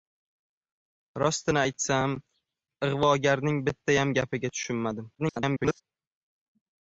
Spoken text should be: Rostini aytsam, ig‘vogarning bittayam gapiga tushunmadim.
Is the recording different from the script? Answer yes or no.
yes